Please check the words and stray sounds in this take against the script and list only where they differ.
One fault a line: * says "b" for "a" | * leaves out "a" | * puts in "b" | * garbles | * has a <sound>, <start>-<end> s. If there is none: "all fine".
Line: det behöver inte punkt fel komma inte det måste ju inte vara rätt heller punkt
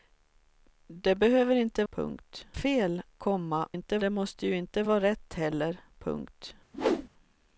* has a whoosh, 6.7-7.1 s